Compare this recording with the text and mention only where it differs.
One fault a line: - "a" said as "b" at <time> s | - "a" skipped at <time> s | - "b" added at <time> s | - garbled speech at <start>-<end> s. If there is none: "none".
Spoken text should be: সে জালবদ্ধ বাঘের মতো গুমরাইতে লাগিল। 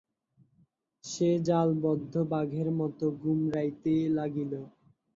none